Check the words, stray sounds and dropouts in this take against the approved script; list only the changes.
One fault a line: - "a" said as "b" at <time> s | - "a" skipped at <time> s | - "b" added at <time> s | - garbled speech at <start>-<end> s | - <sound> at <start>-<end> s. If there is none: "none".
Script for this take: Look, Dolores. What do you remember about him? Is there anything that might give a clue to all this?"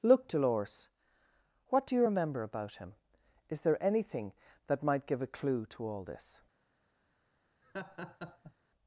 - laugh at 7.6-8.5 s